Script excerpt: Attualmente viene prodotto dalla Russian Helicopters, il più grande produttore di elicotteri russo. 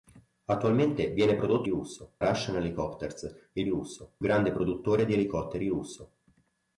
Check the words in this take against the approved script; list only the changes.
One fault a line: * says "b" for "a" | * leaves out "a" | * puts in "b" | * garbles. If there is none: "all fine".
* says "russo" for "dalla"
* says "russo" for "più"